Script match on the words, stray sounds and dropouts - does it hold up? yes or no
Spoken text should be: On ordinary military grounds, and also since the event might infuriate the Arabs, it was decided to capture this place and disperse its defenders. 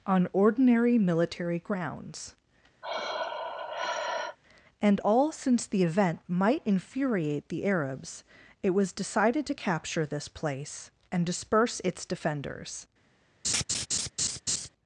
no